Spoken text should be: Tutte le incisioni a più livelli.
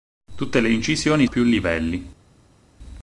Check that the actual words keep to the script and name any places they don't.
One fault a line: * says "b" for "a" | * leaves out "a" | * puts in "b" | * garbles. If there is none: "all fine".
all fine